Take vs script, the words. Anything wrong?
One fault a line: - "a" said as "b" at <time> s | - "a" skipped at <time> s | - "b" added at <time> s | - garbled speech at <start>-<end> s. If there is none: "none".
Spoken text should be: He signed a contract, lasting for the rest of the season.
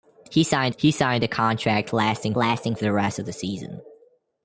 - "he signed" added at 0.8 s
- "lasting" added at 2.4 s